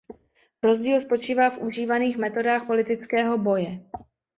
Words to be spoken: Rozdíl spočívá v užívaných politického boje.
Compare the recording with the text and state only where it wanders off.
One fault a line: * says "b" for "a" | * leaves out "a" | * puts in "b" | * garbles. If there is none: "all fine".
* puts in "metodách"